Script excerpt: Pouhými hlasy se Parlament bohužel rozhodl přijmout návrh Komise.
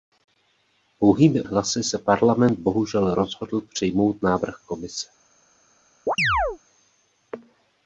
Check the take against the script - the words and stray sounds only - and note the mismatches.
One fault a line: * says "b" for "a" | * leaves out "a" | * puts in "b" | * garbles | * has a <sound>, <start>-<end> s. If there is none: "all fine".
* has a chirp, 6.1-6.6 s